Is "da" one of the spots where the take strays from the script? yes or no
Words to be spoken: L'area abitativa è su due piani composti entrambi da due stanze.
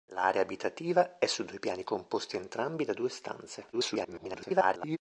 no